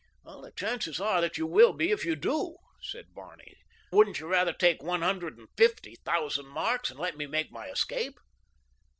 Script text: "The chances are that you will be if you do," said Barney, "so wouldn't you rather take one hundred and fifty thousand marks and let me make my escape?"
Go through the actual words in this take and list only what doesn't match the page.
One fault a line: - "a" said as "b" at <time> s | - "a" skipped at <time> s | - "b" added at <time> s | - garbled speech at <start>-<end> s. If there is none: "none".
- "so" skipped at 3.6 s